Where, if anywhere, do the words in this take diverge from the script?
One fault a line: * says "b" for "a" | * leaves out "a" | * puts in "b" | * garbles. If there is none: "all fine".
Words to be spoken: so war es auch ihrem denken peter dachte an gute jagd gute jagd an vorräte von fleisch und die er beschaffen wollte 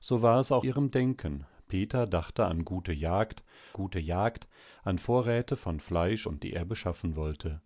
all fine